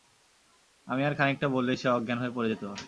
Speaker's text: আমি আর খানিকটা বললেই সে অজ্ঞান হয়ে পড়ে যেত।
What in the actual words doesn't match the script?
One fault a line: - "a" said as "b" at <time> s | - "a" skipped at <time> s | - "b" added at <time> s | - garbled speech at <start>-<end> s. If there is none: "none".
none